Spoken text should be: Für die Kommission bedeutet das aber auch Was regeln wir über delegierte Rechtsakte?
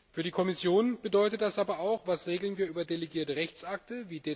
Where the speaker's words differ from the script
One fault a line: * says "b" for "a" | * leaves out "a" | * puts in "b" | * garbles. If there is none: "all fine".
all fine